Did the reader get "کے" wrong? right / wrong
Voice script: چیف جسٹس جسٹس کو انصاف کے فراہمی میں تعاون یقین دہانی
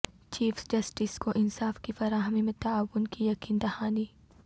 wrong